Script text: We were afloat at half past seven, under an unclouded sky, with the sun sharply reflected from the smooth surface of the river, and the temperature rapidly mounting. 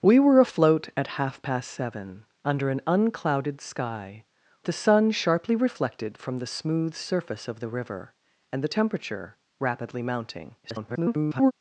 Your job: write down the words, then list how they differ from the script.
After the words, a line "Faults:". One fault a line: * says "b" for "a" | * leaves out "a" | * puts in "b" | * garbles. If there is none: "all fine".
We were afloat at half past seven, under an unclouded sky, the sun sharply reflected from the smooth surface of the river, and the temperature rapidly mounting. [garbled]
Faults:
* leaves out "with"
* garbles